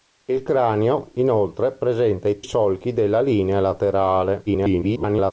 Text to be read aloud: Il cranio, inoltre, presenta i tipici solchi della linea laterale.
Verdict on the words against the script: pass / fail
fail